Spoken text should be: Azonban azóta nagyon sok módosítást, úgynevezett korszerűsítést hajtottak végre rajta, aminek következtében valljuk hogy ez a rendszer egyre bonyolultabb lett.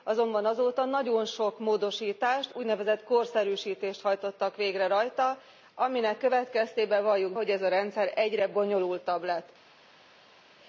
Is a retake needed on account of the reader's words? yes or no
no